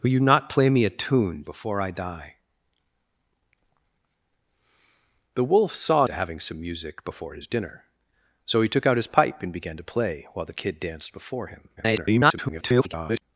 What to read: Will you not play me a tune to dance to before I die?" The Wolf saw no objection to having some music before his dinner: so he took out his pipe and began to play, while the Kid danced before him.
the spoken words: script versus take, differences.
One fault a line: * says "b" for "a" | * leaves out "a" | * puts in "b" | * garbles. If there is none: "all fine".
* leaves out "to dance to"
* leaves out "no objection"
* garbles